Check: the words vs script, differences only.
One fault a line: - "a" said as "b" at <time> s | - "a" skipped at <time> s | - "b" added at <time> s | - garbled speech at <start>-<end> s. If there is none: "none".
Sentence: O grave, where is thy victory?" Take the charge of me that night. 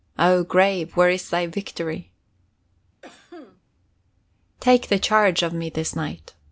- "that" said as "this" at 5.7 s